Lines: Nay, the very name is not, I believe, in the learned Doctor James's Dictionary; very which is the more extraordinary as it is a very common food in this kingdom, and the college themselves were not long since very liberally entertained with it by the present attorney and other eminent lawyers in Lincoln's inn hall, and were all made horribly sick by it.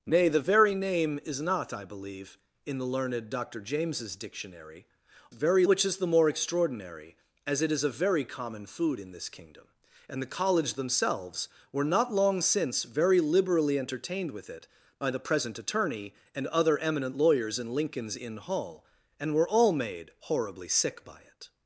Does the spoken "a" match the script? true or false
true